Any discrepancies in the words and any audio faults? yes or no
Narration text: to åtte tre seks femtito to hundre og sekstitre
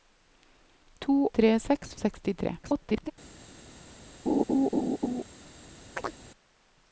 yes